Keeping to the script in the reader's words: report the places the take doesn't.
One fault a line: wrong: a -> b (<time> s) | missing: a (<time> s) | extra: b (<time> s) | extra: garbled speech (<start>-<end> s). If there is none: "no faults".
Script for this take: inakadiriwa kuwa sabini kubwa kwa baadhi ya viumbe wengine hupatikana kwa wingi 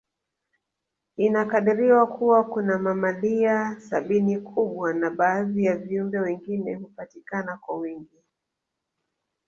extra: kuna mamalia (2.4 s)
wrong: kwa -> na (4.9 s)